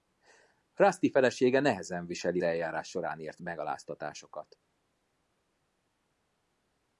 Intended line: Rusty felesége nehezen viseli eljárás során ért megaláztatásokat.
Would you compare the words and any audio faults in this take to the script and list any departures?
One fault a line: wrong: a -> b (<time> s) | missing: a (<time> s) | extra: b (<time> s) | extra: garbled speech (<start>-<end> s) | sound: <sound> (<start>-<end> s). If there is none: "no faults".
no faults